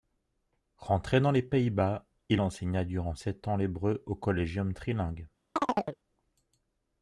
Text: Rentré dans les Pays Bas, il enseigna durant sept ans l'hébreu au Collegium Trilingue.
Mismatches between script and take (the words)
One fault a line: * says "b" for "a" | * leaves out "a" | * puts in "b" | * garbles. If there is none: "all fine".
all fine